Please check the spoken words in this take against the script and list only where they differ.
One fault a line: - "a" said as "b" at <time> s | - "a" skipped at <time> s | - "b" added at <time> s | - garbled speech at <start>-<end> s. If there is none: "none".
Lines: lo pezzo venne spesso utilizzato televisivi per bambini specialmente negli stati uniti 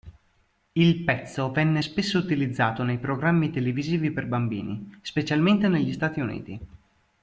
- "lo" said as "il" at 0.7 s
- "nei programmi" added at 2.8 s